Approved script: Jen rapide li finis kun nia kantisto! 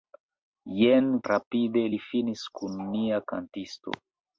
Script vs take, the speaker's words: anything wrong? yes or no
no